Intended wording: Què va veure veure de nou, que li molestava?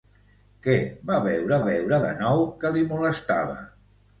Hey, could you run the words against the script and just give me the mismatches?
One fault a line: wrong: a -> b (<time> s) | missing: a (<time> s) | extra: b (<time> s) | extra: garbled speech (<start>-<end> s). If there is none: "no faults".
no faults